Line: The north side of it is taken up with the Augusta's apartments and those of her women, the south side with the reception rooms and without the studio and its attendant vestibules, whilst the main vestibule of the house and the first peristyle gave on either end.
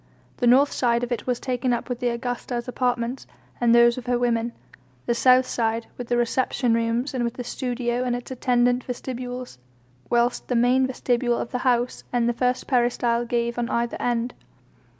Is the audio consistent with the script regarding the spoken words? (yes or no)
no